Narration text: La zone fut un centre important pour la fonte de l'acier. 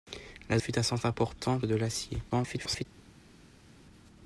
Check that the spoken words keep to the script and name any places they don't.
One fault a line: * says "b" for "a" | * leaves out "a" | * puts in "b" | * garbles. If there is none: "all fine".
* leaves out "zone"
* leaves out "pour la fonte"
* garbles